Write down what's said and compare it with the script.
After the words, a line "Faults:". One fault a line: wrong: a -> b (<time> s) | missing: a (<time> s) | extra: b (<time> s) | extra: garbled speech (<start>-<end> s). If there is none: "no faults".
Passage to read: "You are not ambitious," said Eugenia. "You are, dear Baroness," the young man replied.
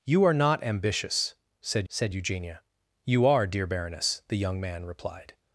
"You are not ambitious," said said Eugenia. "You are, dear Baroness," the young man replied.
Faults:
extra: said (1.9 s)